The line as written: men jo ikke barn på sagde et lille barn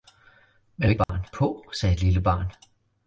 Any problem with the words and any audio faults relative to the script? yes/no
yes